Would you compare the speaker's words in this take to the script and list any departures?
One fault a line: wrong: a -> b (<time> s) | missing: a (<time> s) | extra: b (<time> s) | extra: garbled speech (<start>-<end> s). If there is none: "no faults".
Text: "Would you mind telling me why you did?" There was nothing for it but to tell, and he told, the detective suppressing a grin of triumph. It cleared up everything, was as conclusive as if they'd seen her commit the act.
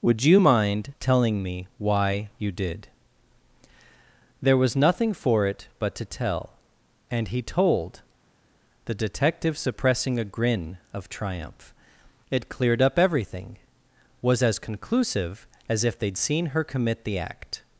no faults